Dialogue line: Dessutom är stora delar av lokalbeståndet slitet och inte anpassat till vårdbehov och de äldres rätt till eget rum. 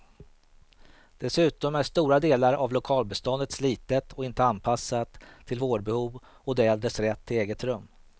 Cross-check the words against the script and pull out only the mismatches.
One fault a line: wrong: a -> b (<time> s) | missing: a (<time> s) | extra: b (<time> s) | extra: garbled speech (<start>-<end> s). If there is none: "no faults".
no faults